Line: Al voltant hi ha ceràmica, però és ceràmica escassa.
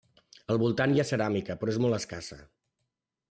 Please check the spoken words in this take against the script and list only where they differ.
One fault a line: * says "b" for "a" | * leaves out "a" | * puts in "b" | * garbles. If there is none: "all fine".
* says "molt" for "ceràmica"